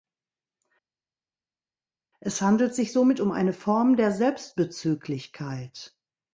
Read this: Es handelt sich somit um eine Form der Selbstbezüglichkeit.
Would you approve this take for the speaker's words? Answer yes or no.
yes